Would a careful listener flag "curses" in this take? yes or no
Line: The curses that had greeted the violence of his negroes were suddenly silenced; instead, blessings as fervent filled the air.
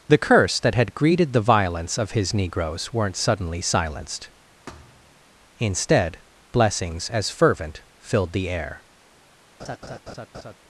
yes